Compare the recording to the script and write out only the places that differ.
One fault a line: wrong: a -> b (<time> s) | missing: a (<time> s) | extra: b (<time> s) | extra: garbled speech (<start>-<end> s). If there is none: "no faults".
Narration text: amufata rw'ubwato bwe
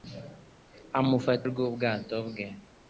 no faults